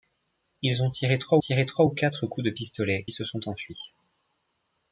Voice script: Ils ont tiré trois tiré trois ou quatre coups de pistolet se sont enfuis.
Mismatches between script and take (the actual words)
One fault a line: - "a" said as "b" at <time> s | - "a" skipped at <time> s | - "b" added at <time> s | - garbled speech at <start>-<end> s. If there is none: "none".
none